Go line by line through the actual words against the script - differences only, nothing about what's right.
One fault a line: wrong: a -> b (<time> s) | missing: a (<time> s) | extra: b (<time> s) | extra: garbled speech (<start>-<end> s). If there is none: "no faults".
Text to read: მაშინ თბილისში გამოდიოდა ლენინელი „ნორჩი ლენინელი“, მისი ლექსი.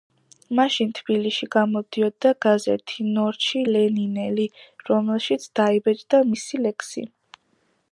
wrong: ლენინელი -> გაზეთი (2.5 s)
extra: რომელშიც დაიბეჭდა (4.9 s)